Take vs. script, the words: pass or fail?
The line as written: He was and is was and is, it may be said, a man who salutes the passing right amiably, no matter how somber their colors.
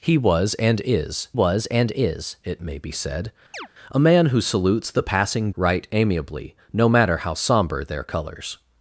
pass